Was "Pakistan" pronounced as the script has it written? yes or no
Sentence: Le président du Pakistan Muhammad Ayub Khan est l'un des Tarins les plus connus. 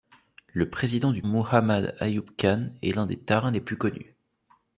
no